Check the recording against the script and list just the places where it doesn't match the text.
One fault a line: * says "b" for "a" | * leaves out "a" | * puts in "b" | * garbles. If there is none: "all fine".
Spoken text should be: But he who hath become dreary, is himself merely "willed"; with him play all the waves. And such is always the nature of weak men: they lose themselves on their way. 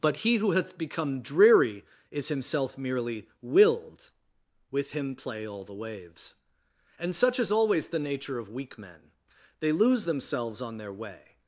all fine